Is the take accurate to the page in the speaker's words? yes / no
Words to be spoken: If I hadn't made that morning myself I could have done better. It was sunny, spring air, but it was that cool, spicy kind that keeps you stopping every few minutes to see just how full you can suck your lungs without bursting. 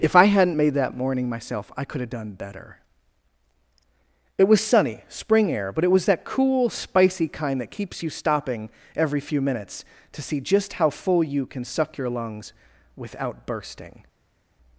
yes